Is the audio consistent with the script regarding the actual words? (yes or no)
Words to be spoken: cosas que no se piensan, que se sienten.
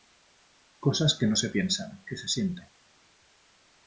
yes